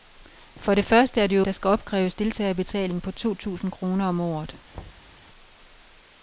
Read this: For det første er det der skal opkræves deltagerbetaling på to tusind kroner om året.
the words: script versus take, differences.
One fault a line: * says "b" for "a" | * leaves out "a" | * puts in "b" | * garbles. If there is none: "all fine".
all fine